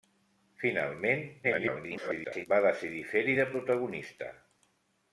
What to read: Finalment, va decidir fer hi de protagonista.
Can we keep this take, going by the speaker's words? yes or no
no